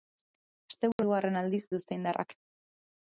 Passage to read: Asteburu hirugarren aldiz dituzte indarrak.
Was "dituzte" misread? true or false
false